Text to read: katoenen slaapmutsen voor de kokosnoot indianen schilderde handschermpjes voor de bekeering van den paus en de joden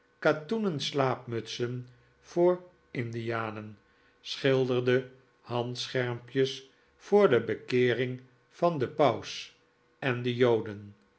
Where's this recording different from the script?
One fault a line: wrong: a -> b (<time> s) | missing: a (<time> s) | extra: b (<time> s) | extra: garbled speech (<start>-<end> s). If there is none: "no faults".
missing: de kokosnoot (2.6 s)